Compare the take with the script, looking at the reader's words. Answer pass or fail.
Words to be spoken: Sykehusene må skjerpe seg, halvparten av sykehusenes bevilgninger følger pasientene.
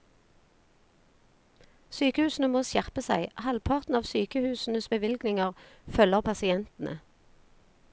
pass